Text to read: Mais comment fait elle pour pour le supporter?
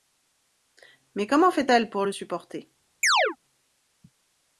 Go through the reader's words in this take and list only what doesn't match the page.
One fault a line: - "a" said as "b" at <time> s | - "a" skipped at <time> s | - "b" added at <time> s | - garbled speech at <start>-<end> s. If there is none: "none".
- "pour" skipped at 2.0 s